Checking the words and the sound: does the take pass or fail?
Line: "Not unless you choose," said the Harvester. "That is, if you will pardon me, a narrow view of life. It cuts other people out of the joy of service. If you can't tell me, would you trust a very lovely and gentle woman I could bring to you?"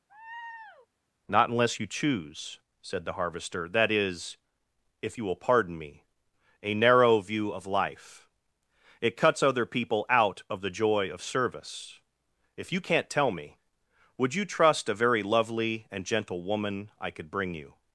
fail